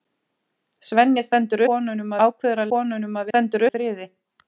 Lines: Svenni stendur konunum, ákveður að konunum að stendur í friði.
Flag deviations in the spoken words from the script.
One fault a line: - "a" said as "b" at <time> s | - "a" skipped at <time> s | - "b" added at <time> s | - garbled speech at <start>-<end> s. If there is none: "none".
none